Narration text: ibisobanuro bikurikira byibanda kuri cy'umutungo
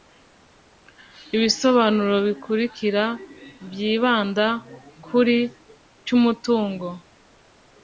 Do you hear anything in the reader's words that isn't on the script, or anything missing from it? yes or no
no